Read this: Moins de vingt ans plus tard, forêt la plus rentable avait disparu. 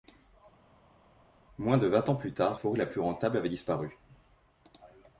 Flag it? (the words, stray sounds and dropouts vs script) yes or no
no